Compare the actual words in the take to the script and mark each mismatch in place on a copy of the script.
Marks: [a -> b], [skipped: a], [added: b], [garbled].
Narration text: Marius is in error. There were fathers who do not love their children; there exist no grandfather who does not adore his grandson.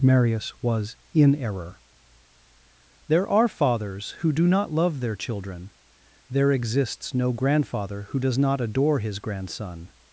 Marius [is -> was] in error. There [were -> are] fathers who do not love their children; there [exist -> exists] no grandfather who does not adore his grandson.